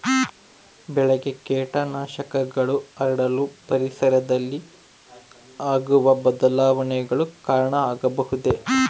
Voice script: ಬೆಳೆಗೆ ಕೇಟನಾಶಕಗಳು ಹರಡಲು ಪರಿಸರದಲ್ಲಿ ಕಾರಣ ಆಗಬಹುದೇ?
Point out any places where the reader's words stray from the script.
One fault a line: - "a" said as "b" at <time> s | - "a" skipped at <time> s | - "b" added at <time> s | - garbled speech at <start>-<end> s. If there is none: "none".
- "ಆಗುವ ಬದಲಾವಣೆಗಳು" added at 5.6 s